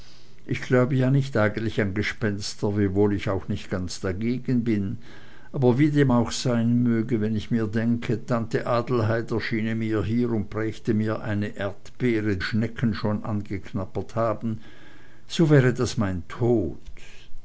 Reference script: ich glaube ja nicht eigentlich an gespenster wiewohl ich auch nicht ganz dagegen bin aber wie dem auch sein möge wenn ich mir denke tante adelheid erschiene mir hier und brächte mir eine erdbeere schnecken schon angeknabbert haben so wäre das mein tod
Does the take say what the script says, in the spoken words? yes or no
yes